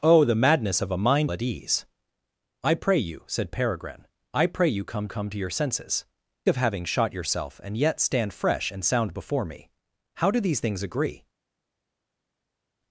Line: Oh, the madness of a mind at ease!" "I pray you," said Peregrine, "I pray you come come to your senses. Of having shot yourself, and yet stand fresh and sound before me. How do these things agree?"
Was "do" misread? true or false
false